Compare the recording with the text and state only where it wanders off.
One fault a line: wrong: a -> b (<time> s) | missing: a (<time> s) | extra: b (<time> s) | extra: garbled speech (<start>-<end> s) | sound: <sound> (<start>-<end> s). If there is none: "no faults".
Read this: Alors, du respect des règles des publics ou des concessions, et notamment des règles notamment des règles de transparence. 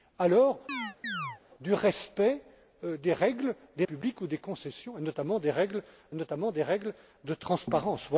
sound: chirp (0.7-1.4 s)